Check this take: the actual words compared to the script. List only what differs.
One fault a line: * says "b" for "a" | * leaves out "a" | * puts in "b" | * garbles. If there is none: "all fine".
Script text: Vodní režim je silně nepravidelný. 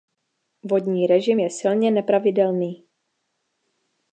all fine